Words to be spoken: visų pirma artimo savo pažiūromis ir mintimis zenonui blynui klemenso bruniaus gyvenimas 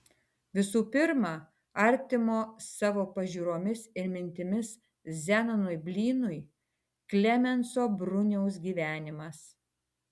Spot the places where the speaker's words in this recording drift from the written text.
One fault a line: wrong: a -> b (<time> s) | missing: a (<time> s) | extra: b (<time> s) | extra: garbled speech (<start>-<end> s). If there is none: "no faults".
no faults